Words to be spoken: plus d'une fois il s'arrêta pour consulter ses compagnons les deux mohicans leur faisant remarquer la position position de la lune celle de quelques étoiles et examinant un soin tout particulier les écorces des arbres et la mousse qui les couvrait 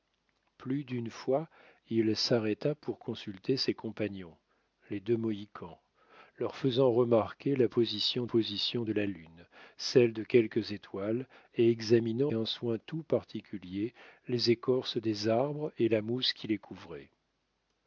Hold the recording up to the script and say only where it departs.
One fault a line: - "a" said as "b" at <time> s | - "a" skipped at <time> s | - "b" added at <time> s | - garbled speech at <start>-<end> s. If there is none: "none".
none